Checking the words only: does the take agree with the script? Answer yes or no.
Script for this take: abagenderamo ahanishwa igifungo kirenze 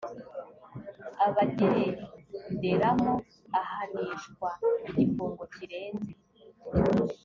yes